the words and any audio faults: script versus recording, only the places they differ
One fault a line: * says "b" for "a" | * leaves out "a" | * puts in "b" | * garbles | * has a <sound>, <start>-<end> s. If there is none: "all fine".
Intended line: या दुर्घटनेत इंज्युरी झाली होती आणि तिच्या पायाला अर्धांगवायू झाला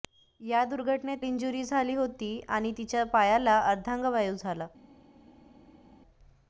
all fine